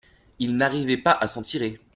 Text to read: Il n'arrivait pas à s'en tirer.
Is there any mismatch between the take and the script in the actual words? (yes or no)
no